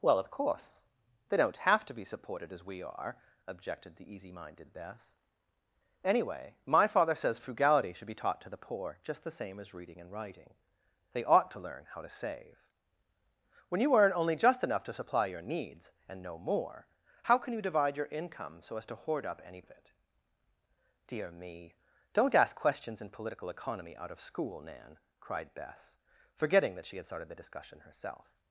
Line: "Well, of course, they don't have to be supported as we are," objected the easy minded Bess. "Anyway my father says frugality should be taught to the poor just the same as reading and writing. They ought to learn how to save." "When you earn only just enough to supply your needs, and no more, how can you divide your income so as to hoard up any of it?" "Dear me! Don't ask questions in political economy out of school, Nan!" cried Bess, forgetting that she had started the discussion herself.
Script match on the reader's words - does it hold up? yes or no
yes